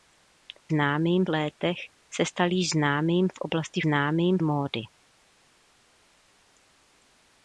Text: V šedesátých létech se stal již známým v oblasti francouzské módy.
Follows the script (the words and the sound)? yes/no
no